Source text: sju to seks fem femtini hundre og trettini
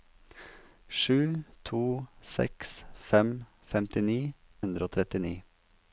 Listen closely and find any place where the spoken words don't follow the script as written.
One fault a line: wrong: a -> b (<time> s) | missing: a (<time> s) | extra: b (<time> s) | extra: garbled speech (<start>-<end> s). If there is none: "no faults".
no faults